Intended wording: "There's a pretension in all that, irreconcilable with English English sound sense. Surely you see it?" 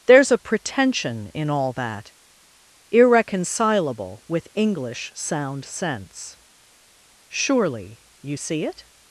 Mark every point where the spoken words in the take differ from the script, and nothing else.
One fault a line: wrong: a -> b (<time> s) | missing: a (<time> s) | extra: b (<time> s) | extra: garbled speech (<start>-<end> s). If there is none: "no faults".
missing: English (5.1 s)